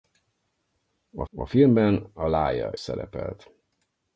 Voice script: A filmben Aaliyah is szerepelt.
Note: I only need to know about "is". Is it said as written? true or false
false